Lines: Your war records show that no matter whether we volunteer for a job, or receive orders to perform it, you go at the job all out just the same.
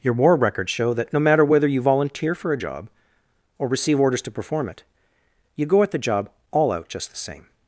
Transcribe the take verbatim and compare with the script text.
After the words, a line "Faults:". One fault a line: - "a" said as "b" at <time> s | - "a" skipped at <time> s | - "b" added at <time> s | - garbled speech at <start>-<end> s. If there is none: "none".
Your war records show that no matter whether you volunteer for a job, or receive orders to perform it, you go at the job all out just the same.
Faults:
- "we" said as "you" at 1.7 s